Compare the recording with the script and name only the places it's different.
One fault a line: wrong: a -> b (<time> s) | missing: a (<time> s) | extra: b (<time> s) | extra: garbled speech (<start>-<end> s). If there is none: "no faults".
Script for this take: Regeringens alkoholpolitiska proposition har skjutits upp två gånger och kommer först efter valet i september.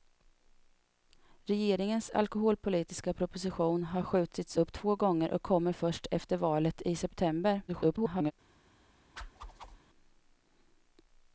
extra: garbled speech (7.7-8.3 s)